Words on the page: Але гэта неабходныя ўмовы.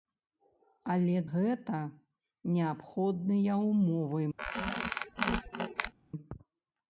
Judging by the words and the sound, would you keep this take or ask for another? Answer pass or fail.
fail